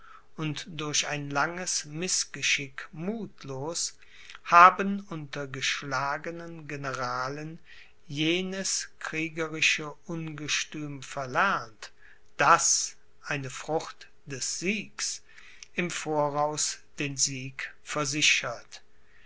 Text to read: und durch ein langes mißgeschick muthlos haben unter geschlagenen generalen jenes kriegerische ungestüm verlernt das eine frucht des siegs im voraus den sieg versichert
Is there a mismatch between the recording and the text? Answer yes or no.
no